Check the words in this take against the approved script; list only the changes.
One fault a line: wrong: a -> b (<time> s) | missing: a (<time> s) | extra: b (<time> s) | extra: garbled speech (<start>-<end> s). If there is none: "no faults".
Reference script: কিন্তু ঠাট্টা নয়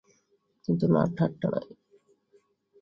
extra: না (0.9 s)